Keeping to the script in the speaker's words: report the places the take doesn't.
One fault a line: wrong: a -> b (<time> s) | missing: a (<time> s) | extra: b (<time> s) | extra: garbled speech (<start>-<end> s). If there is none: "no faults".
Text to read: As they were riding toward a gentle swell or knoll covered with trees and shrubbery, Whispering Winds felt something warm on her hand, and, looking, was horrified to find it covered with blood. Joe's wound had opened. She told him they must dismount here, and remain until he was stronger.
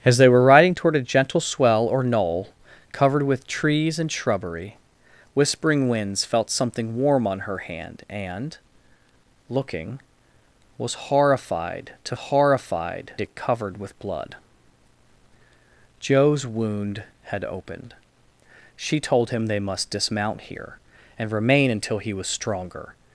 wrong: find -> horrified (12.1 s)